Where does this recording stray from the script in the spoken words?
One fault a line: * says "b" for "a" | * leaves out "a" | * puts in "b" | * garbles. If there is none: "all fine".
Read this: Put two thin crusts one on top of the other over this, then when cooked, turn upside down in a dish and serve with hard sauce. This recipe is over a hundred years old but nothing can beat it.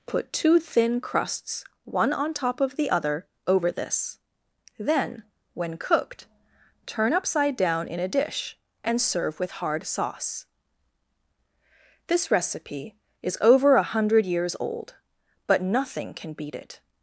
all fine